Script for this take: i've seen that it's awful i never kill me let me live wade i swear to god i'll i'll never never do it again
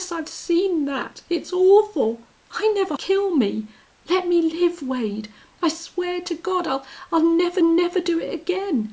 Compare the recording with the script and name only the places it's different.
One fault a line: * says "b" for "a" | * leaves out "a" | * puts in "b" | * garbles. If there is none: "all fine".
all fine